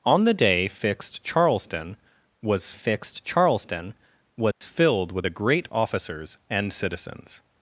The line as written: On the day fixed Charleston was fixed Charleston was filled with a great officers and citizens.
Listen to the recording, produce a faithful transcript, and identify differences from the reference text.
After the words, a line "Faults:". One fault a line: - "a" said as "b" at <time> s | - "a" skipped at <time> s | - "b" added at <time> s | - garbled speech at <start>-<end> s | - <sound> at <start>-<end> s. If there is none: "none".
On the day fixed Charleston was fixed Charleston was filled with a great officers and citizens.
Faults:
- dropout at 4.5-4.6 s